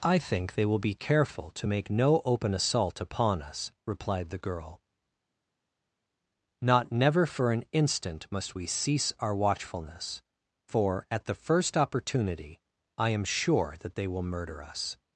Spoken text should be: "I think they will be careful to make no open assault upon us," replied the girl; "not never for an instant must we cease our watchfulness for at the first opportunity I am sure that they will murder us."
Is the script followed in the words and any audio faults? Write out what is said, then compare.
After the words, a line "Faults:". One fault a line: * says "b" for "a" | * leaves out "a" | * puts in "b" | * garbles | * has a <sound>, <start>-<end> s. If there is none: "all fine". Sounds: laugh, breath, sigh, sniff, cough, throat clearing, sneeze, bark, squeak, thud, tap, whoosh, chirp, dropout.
"I think they will be careful to make no open assault upon us," replied the girl; "not never for an instant must we cease our watchfulness for at the first opportunity I am sure that they will murder us."
Faults:
all fine